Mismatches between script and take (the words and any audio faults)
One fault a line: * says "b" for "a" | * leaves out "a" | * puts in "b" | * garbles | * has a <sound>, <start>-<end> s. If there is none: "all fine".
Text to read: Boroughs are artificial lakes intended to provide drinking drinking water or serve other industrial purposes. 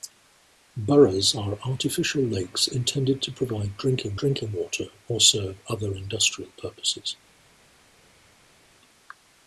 all fine